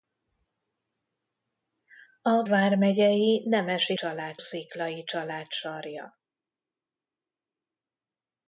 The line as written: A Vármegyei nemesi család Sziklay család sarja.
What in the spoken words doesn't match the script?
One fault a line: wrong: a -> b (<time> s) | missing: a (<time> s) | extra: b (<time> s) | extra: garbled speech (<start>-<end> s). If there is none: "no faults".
no faults